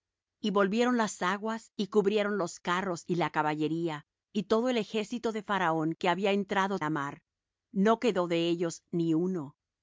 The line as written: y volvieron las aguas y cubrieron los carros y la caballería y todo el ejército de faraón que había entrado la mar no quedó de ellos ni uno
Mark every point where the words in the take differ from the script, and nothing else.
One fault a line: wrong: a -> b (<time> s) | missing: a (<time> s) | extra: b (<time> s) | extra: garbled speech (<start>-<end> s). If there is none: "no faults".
no faults